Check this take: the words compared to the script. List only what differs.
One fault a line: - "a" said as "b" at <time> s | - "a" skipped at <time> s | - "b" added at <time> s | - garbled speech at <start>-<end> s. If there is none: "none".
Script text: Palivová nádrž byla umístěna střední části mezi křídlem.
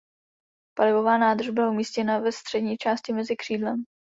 - "ve" added at 2.2 s